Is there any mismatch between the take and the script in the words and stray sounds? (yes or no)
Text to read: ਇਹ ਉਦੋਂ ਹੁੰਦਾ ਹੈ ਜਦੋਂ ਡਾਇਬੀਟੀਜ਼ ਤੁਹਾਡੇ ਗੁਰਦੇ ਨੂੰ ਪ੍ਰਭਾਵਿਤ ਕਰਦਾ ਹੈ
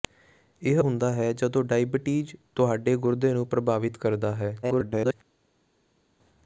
yes